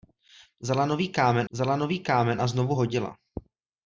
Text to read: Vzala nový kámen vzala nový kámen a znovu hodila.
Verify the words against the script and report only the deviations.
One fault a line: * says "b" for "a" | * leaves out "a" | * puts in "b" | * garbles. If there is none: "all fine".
all fine